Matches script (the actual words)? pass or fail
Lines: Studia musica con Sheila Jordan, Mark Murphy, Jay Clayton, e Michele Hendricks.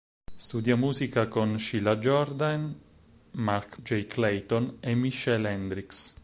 fail